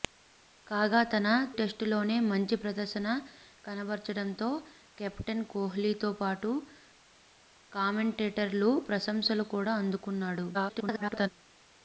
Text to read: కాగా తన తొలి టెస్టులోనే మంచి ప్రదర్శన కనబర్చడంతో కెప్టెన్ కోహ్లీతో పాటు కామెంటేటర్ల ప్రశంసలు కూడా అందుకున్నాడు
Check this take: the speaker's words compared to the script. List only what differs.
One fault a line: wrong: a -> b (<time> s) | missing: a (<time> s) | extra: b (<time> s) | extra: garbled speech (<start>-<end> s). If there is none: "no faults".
missing: తొలి (1.3 s)
extra: garbled speech (10.5-11.3 s)